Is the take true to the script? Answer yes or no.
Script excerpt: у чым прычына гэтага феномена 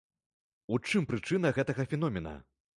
yes